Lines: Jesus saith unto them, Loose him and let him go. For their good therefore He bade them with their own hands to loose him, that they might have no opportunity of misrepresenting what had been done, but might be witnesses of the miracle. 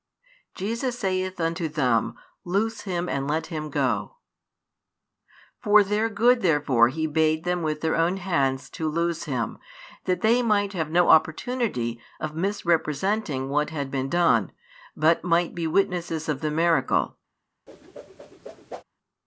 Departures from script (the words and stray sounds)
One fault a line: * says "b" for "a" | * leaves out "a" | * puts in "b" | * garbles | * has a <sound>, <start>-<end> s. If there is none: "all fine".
* has a whoosh, 17.7-18.8 s